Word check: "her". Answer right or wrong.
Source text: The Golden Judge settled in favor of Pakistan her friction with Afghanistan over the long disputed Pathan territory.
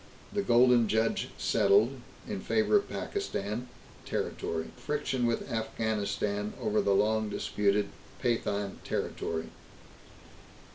wrong